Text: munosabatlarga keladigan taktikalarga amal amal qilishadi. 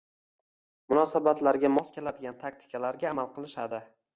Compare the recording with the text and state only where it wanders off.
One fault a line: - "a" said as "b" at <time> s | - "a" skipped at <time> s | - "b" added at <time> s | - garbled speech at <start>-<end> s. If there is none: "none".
- "mos" added at 1.8 s
- "amal" skipped at 3.3 s